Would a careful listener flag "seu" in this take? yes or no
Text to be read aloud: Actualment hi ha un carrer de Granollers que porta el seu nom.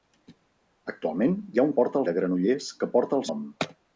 yes